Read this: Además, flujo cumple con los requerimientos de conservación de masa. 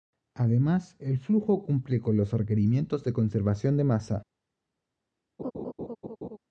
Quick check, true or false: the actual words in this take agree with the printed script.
false